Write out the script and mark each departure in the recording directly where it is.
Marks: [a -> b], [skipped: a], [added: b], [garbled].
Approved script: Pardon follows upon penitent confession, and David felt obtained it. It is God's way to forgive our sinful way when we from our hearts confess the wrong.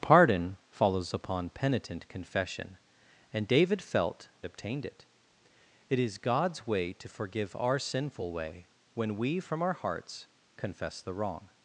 Pardon follows upon penitent confession, and David felt obtained it. It is God's way to forgive our sinful way when we from our hearts confess the wrong.